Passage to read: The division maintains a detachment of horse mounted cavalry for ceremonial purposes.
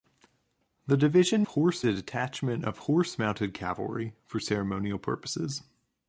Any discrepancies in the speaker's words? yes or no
yes